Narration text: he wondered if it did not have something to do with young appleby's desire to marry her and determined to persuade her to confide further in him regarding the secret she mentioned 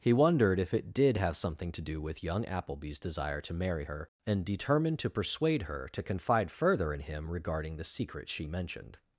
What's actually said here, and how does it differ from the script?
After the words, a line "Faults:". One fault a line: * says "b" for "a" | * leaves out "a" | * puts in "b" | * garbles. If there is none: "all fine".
he wondered if it did have something to do with young appleby's desire to marry her and determined to persuade her to confide further in him regarding the secret she mentioned
Faults:
* leaves out "not"